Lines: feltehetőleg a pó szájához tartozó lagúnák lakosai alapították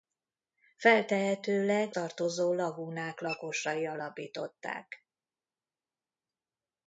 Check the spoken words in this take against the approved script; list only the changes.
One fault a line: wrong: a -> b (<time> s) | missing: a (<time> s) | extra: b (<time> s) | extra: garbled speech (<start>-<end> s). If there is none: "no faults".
missing: a pó szájához (1.9 s)